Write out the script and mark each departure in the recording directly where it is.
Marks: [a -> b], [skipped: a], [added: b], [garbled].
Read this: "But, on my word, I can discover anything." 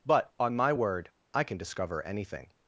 "But, on my word, I can discover anything."